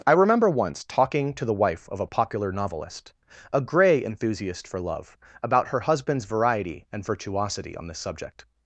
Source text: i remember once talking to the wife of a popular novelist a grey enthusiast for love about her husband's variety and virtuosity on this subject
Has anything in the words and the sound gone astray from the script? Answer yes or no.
no